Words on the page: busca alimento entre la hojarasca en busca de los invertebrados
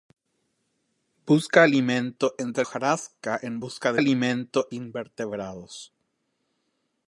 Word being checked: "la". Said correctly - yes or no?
no